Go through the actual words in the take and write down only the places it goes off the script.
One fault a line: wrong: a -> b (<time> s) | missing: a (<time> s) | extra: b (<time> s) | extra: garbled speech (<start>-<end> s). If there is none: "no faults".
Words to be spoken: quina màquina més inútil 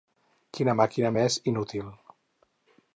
no faults